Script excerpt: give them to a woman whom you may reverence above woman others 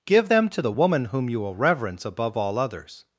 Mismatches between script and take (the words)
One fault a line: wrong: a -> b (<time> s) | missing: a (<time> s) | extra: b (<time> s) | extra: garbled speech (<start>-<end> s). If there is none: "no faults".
wrong: a -> the (0.6 s)
wrong: may -> will (1.4 s)
wrong: woman -> all (2.3 s)